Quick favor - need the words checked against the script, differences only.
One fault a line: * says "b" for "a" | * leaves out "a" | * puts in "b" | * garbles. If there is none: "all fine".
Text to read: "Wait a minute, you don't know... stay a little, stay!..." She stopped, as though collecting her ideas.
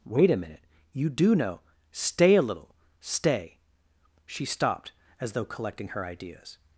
* says "do" for "don't"